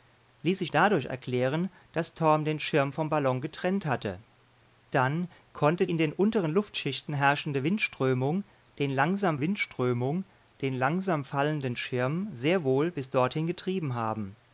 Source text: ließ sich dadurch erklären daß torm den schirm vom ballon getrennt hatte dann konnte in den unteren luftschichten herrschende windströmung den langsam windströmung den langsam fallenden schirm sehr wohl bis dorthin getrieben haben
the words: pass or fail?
pass